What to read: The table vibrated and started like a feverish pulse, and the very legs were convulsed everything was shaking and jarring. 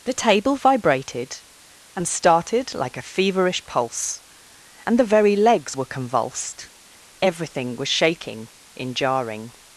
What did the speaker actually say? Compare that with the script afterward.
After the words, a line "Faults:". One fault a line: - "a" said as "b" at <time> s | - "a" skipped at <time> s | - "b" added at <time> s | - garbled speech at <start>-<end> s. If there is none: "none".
The table vibrated and started like a feverish pulse, and the very legs were convulsed everything was shaking in jarring.
Faults:
- "and" said as "in" at 8.8 s